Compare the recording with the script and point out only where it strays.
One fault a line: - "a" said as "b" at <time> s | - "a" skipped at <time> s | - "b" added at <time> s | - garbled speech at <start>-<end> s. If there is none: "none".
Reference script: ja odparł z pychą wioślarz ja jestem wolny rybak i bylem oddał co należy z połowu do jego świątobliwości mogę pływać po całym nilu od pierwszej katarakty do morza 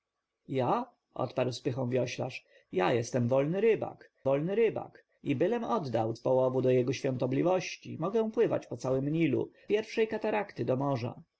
- "wolny rybak" added at 4.2 s
- "co należy" skipped at 6.1 s
- "od" skipped at 9.5 s